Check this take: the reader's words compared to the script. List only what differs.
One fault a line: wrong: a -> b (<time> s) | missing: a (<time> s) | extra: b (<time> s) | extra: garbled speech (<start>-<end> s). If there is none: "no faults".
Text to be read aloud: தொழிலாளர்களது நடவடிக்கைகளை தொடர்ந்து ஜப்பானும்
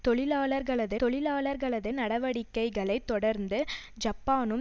extra: தொழிலாளர்களது (1.0 s)